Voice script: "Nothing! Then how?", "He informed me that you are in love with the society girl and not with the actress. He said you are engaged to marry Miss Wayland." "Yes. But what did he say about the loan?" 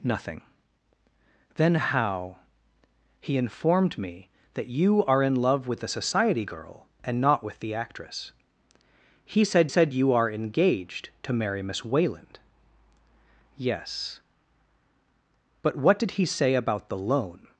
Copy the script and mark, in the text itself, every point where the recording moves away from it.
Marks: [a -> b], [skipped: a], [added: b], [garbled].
"Nothing! Then how?", "He informed me that you are in love with the society girl and not with the actress. He said [added: said] you are engaged to marry Miss Wayland." "Yes. But what did he say about the loan?"